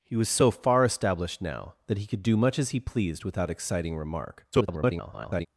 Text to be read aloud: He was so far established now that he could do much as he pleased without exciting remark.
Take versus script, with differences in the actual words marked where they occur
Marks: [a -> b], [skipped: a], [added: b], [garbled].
He was so far established now that he could do much as he pleased without exciting remark. [garbled]